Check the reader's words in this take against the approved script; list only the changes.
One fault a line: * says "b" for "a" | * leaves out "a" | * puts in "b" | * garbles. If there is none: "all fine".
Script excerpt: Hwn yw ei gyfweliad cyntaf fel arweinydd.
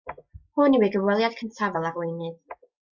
all fine